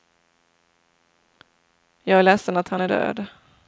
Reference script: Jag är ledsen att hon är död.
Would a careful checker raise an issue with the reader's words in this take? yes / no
yes